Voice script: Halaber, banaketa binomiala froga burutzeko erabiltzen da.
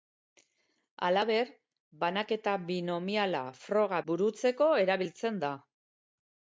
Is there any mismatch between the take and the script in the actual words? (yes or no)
no